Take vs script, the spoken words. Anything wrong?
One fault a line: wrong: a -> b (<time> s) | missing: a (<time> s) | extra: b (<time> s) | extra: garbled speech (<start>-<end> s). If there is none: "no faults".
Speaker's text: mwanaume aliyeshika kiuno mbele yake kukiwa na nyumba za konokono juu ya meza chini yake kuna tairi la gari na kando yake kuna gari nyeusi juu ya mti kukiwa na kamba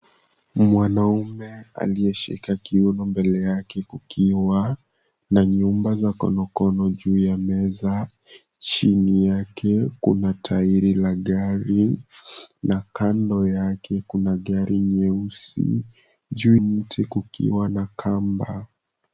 missing: ya (16.6 s)